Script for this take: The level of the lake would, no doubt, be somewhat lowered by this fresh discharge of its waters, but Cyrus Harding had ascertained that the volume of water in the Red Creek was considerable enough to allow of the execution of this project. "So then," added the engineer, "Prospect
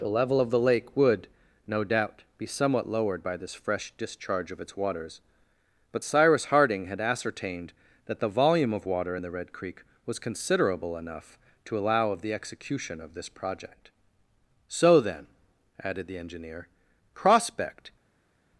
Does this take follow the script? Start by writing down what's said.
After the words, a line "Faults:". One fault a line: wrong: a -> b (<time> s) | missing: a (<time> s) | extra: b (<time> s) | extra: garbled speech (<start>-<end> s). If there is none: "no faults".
The level of the lake would, no doubt, be somewhat lowered by this fresh discharge of its waters, but Cyrus Harding had ascertained that the volume of water in the Red Creek was considerable enough to allow of the execution of this project. "So then," added the engineer, "Prospect
Faults:
no faults